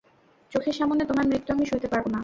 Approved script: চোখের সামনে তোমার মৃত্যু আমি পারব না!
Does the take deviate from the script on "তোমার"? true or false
false